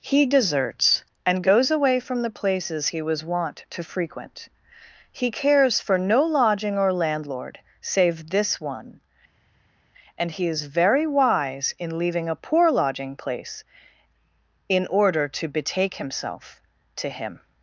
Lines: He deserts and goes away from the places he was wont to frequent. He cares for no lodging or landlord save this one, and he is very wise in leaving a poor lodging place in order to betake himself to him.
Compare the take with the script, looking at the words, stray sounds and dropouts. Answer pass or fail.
pass